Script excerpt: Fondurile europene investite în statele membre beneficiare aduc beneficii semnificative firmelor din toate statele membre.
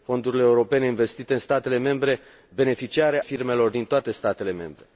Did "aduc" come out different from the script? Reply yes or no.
yes